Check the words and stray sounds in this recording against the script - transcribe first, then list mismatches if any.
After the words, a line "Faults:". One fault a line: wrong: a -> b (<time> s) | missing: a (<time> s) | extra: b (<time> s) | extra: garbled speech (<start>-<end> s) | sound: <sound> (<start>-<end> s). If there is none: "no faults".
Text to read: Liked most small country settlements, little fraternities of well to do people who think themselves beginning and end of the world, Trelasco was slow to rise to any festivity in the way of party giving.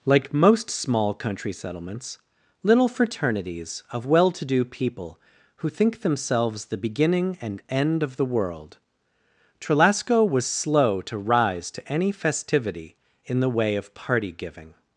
Like most small country settlements, little fraternities of well to do people who think themselves the beginning and end of the world, Trelasco was slow to rise to any festivity in the way of party giving.
Faults:
wrong: Liked -> Like (0.1 s)
extra: the (6.7 s)